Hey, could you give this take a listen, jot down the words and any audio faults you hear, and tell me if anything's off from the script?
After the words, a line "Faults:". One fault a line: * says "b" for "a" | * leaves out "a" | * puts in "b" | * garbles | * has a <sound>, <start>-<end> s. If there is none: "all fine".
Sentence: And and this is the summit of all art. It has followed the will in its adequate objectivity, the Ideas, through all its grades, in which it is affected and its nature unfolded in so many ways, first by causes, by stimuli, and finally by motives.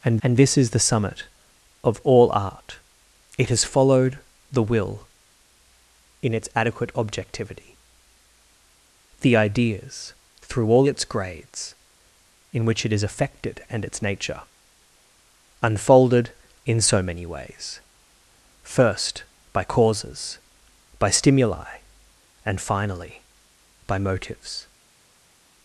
And and this is the summit of all art. It has followed the will in its adequate objectivity, the Ideas, through all its grades, in which it is affected and its nature unfolded in so many ways, first by causes, by stimuli, and finally by motives.
Faults:
all fine